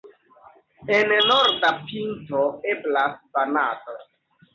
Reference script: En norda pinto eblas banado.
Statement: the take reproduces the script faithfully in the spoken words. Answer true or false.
true